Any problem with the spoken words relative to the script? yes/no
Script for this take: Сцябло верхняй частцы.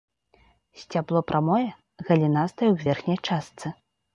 yes